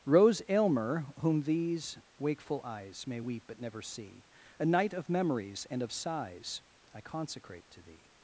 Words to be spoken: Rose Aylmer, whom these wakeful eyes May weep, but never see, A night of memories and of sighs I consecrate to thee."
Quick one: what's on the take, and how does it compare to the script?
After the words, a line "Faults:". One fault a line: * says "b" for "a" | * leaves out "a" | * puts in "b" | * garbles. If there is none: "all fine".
Rose Aylmer, whom these wakeful eyes May weep, but never see, A night of memories and of sighs I consecrate to thee."
Faults:
all fine